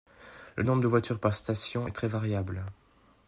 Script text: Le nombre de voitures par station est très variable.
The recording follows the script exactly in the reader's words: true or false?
true